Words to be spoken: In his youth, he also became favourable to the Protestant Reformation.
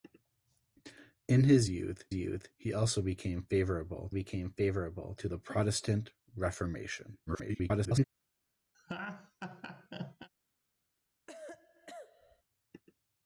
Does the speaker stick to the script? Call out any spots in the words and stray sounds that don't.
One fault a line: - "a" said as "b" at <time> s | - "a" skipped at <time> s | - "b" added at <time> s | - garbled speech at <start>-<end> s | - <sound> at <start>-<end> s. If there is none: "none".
- "youth" added at 2.1 s
- "became favourable" added at 4.1 s
- garbled speech at 7.3-8.0 s
- laugh at 8.7-10.3 s
- cough at 11.3-12.4 s